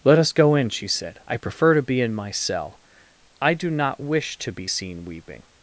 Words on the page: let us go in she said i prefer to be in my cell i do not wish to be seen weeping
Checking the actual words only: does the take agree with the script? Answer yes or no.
yes